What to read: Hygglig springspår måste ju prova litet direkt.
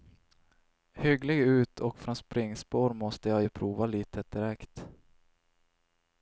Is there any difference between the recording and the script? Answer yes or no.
yes